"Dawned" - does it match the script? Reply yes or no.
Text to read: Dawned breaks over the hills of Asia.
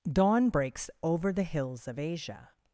no